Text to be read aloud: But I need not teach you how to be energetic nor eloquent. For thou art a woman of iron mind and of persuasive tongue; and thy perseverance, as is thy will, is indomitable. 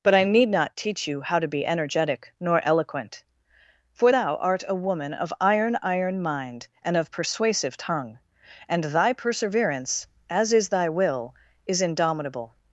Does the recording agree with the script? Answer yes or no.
no